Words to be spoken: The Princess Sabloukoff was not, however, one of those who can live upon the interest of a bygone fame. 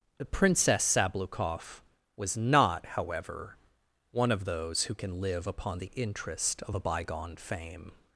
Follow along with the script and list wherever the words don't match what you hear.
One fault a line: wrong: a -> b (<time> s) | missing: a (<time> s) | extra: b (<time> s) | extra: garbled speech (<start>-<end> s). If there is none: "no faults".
no faults